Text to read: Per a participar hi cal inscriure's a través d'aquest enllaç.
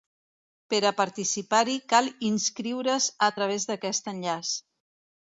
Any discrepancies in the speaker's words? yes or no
no